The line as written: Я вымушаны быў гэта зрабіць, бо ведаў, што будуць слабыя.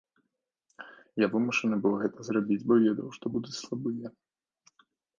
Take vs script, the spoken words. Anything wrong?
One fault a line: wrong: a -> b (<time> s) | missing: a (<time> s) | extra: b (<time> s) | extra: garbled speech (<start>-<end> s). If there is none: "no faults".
no faults